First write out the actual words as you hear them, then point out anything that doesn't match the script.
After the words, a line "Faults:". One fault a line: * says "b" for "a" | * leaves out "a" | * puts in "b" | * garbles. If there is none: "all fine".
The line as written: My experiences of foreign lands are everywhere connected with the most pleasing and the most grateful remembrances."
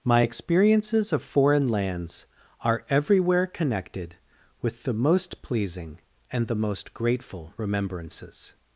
My experiences of foreign lands are everywhere connected with the most pleasing and the most grateful remembrances."
Faults:
all fine